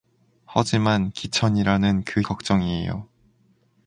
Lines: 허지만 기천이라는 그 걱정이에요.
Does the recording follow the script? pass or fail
pass